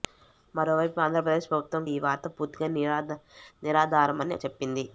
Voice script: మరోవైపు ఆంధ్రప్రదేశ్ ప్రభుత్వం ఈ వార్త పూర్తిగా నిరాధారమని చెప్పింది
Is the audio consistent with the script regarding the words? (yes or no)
yes